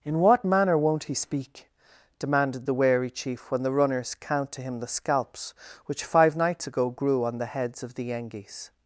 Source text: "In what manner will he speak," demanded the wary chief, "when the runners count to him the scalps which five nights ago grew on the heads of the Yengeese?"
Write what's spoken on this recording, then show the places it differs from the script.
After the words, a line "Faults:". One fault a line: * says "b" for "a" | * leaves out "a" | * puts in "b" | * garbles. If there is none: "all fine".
"In what manner won't he speak," demanded the wary chief, "when the runners count to him the scalps which five nights ago grew on the heads of the Yengeese?"
Faults:
* says "won't" for "will"